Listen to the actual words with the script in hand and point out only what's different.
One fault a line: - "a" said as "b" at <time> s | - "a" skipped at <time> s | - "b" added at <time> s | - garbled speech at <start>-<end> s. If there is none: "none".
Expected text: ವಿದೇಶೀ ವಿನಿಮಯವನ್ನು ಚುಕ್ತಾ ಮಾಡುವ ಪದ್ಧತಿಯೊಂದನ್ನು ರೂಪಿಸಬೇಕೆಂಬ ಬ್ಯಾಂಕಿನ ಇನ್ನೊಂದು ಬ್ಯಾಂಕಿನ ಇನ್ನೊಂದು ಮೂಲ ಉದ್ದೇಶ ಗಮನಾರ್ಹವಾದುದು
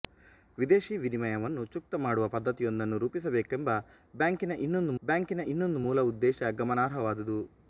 none